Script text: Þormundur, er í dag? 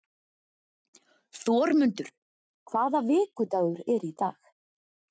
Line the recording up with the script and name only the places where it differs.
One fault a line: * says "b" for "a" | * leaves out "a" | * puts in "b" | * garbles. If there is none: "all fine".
* puts in "hvaða vikudagur"